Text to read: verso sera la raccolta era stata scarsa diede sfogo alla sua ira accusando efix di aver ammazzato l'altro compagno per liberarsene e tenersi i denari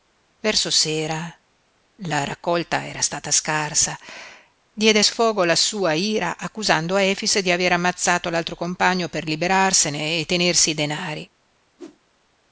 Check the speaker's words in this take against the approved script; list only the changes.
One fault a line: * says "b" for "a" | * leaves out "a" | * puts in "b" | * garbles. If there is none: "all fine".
all fine